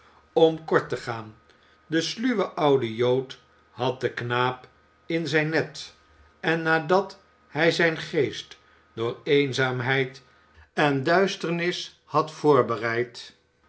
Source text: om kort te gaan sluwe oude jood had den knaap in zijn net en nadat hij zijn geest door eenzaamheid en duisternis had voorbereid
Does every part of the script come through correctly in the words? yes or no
no